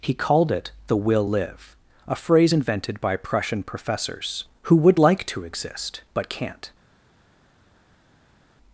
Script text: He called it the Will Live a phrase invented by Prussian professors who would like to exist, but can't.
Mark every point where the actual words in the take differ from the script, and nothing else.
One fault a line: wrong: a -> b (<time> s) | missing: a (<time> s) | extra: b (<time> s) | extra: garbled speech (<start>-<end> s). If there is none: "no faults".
no faults